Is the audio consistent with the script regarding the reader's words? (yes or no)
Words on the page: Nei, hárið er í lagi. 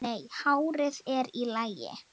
yes